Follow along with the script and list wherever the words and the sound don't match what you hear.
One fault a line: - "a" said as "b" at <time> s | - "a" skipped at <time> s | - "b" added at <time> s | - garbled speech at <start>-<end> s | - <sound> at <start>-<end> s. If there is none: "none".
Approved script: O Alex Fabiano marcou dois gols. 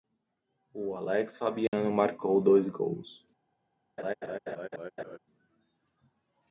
- dropout at 1.7-1.7 s
- laugh at 4.0-5.2 s